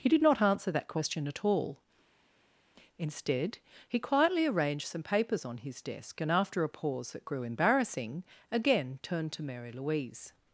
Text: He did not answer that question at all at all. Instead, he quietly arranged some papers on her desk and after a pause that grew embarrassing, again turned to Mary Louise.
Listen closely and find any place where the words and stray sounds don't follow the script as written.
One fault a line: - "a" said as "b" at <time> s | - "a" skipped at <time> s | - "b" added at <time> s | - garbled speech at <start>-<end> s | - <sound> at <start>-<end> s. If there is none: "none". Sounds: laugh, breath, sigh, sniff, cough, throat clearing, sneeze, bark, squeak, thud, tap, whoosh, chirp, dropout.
- "at all" skipped at 1.8 s
- "her" said as "his" at 5.6 s